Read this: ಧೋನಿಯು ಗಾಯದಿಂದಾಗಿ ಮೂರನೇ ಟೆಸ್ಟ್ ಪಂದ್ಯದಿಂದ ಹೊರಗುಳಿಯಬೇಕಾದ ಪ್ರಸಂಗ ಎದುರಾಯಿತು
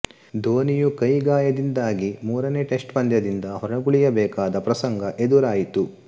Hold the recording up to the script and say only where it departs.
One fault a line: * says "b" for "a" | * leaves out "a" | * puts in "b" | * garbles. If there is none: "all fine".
* puts in "ಕೈ"